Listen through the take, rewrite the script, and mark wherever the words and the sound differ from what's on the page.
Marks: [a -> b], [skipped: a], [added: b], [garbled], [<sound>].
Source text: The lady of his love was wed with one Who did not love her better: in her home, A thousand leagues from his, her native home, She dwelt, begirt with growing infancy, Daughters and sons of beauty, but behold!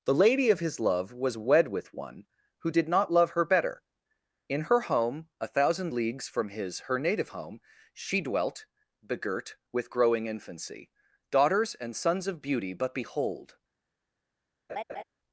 The lady of his love was wed with one Who did not love her better: in her home, A thousand leagues from his, her native home, She dwelt, begirt with growing infancy, Daughters and sons of beauty, but behold! [laugh]